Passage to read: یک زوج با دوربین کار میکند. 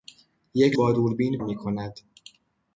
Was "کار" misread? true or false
true